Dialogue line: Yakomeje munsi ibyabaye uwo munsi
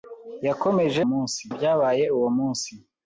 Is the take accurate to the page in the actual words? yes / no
yes